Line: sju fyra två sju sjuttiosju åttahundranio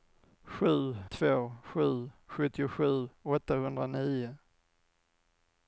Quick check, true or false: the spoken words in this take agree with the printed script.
false